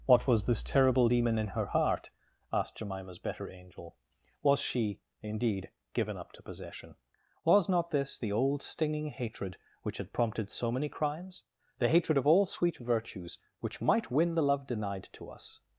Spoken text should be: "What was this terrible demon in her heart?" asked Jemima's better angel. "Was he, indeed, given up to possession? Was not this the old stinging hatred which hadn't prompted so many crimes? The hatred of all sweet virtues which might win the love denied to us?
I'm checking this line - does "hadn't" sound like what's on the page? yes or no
no